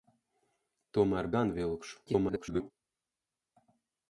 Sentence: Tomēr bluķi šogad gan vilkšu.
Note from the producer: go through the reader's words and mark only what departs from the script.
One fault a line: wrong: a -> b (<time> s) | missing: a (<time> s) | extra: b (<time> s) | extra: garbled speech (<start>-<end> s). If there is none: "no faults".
missing: bluķi šogad (1.3 s)
extra: garbled speech (2.1-2.7 s)